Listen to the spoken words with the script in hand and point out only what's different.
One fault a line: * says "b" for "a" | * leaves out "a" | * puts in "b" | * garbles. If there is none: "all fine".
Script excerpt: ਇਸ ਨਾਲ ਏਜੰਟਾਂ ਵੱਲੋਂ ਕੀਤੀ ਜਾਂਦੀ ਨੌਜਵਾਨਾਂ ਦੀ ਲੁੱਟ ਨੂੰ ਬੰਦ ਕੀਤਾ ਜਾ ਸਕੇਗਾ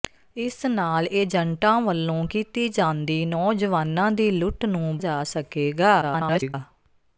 * leaves out "ਬੰਦ ਕੀਤਾ"
* garbles